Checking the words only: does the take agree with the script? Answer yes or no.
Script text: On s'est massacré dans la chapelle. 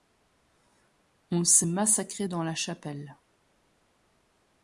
yes